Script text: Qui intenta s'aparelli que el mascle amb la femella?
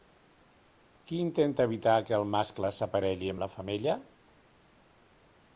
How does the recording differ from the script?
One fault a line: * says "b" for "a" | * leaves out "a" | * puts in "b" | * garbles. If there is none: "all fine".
* says "evitar" for "s'aparelli"
* puts in "s'aparelli"